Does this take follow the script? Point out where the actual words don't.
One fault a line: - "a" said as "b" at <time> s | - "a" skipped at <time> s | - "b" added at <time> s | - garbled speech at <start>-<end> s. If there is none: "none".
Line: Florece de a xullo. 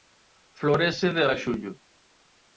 none